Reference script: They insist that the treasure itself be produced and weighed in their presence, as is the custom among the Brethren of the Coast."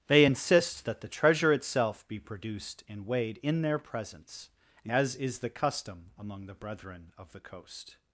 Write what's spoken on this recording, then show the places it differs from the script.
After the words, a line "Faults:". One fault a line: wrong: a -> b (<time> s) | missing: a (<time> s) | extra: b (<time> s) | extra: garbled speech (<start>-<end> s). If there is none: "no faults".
They insist that the treasure itself be produced and weighed in their presence, as is the custom among the Brethren of the Coast."
Faults:
no faults